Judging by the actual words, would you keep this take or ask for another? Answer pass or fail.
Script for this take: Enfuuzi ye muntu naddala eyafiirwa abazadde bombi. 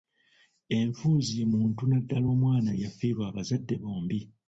fail